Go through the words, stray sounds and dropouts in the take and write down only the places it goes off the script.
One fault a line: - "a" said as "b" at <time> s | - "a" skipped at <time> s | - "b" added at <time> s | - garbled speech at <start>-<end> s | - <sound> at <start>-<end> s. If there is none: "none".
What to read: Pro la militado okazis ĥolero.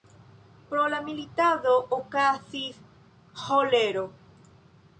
none